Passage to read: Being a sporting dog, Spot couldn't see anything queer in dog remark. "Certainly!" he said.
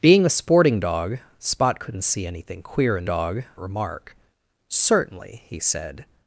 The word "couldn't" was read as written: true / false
true